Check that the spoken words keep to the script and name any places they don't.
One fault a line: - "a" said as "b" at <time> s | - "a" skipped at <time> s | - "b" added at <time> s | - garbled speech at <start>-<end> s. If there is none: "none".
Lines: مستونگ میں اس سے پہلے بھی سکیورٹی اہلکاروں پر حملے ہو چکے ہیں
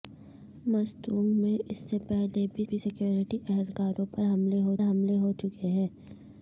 - "بھی" added at 2.7 s
- "حملے ہو" added at 4.8 s